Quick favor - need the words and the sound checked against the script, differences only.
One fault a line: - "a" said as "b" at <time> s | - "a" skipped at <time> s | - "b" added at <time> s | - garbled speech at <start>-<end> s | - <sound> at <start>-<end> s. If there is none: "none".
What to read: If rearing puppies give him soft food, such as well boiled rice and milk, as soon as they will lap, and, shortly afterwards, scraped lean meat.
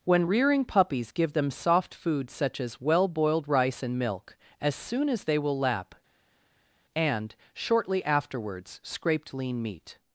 - "If" said as "When" at 0.0 s
- "him" said as "them" at 1.3 s